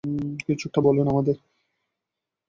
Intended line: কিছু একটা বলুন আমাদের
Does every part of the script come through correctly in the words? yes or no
yes